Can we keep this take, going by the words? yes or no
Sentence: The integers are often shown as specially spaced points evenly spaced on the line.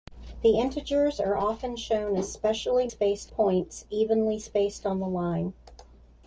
yes